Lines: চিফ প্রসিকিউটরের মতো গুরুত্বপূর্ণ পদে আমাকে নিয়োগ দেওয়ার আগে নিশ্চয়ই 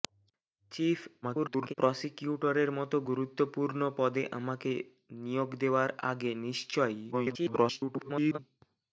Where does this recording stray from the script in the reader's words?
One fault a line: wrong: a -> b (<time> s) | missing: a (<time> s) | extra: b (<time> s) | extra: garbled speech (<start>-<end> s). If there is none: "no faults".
extra: garbled speech (1.2-1.7 s)
extra: garbled speech (7.1-8.4 s)